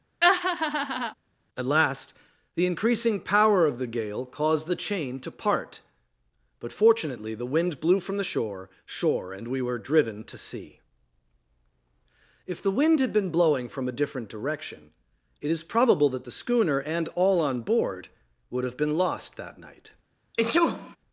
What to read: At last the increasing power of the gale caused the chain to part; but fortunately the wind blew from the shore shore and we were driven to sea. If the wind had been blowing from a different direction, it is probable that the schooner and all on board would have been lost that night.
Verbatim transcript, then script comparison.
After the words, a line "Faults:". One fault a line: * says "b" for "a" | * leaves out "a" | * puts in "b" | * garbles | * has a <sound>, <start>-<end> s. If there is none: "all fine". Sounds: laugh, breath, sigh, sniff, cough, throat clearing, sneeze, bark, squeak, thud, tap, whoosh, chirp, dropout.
At last the increasing power of the gale caused the chain to part; but fortunately the wind blew from the shore shore and we were driven to sea. If the wind had been blowing from a different direction, it is probable that the schooner and all on board would have been lost that night.
Faults:
* has a laugh, 0.2-1.1 s
* has a sneeze, 20.3-21.0 s